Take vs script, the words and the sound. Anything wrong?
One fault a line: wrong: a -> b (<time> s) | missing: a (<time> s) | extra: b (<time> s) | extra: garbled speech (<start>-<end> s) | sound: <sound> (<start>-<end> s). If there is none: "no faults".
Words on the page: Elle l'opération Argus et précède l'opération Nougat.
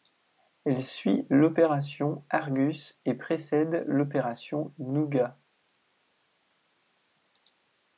extra: suit (0.8 s)